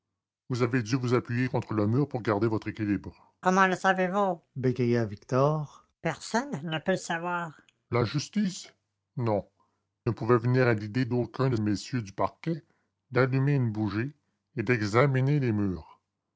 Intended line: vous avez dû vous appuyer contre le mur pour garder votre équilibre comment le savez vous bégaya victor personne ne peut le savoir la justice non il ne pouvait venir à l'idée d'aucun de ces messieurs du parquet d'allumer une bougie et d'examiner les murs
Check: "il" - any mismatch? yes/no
yes